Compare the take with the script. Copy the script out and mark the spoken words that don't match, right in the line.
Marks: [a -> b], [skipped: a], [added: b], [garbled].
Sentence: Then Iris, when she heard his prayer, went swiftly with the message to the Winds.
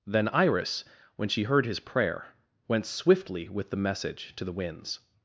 Then Iris, when she heard his prayer, went swiftly with the message to the Winds.